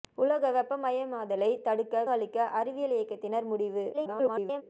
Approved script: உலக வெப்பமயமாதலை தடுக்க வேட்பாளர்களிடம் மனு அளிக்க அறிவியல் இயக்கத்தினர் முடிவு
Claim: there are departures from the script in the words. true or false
true